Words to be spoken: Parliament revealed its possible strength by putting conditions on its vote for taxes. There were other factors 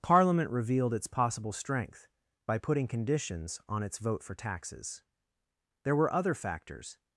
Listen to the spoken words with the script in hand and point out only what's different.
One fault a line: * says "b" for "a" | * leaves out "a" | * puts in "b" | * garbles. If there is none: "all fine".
all fine